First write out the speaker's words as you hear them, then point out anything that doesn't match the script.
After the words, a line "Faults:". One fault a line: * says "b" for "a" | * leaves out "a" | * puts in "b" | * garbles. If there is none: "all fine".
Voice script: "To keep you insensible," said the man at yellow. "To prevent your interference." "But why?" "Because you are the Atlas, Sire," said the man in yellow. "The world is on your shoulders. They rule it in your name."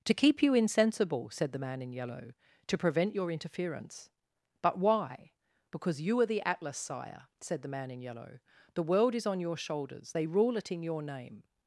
"To keep you insensible," said the man in yellow. "To prevent your interference." "But why?" "Because you are the Atlas, Sire," said the man in yellow. "The world is on your shoulders. They rule it in your name."
Faults:
* says "in" for "at"